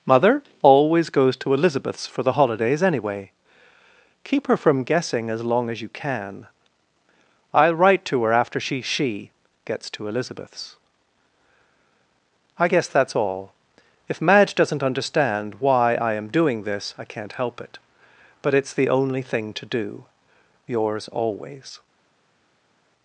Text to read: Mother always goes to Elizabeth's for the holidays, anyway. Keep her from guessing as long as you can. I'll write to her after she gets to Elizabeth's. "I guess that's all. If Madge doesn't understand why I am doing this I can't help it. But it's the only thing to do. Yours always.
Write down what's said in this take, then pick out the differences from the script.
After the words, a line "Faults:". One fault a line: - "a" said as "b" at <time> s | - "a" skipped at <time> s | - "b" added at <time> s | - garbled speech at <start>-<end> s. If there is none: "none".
Mother always goes to Elizabeth's for the holidays, anyway. Keep her from guessing as long as you can. I'll write to her after she she gets to Elizabeth's. "I guess that's all. If Madge doesn't understand why I am doing this I can't help it. But it's the only thing to do. Yours always.
Faults:
- "she" added at 8.8 s